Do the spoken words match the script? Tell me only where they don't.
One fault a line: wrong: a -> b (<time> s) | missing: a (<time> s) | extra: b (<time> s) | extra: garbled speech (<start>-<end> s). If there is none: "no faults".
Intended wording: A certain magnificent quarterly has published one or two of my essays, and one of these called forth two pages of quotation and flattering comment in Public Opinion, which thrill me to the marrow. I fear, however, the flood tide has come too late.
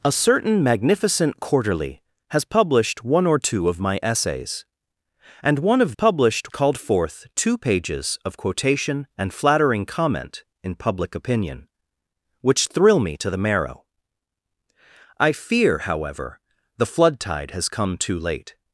wrong: these -> published (5.9 s)